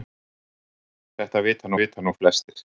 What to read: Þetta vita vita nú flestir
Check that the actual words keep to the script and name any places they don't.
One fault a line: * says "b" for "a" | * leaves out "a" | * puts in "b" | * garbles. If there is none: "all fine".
all fine